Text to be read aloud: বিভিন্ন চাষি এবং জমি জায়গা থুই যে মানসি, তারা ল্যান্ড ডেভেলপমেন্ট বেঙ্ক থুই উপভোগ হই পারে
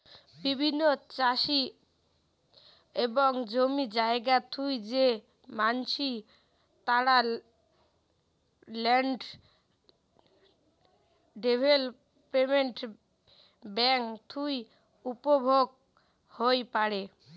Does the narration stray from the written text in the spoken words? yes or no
no